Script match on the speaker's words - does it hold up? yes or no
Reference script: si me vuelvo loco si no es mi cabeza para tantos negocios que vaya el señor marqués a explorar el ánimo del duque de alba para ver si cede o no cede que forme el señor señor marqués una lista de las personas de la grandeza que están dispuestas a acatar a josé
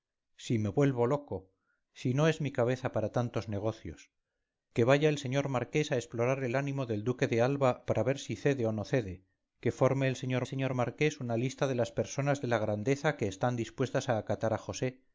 yes